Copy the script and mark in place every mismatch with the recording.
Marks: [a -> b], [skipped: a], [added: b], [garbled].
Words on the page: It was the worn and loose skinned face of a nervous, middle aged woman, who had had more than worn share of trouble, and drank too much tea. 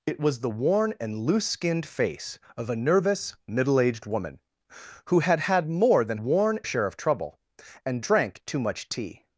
It was the worn and loose skinned face of a nervous, middle aged woman, who had had more than worn share of trouble, and drank too much tea.